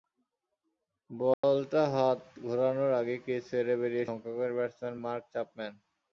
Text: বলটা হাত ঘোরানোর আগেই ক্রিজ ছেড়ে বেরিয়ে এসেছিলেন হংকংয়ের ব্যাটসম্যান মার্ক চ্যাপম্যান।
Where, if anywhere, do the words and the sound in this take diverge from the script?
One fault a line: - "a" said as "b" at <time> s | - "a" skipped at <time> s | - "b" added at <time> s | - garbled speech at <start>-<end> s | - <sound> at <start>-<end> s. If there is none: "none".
- dropout at 1.3-1.4 s
- "এসেছিলেন" skipped at 4.0 s